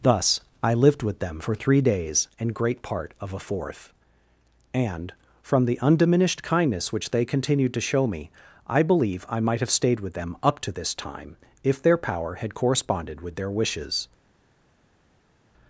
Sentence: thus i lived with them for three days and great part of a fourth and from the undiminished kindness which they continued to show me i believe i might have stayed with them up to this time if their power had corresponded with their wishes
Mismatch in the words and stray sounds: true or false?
false